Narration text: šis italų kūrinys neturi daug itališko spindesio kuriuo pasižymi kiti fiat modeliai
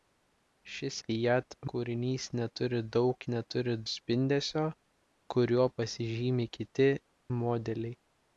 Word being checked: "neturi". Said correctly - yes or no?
yes